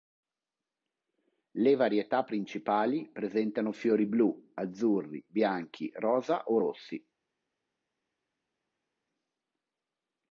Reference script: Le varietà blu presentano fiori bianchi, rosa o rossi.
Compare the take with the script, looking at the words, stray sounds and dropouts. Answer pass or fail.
fail